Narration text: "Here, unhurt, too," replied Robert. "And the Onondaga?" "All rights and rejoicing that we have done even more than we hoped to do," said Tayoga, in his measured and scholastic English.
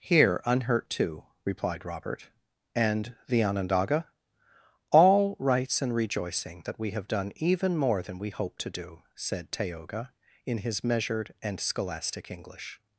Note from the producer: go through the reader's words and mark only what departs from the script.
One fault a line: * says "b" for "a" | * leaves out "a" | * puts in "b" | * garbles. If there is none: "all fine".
all fine